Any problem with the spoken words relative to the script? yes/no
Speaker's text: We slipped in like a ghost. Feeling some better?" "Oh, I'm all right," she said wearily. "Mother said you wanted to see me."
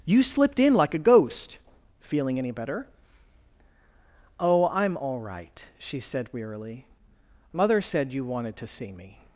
yes